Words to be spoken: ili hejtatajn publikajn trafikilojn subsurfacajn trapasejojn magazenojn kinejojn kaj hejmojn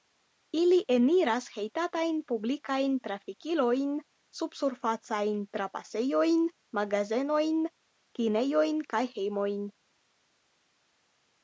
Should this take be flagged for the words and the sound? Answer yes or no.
yes